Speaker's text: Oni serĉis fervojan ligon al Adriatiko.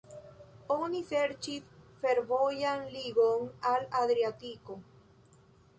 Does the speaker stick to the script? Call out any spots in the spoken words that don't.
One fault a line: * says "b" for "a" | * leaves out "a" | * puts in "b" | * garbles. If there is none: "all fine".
all fine